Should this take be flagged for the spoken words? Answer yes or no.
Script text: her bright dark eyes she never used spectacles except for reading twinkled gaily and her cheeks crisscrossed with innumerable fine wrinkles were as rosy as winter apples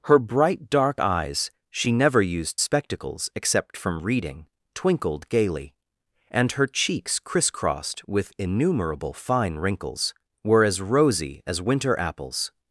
yes